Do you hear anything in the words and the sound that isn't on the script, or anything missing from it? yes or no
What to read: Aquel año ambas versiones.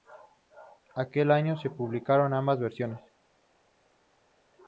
yes